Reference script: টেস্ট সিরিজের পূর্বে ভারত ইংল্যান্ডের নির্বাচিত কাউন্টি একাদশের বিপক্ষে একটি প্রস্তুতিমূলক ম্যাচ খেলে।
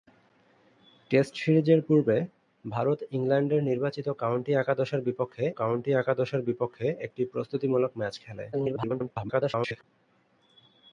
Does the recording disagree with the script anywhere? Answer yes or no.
yes